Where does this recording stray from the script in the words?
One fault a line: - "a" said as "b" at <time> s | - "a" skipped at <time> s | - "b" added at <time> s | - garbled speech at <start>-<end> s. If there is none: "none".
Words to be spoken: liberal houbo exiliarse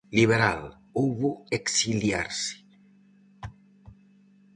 none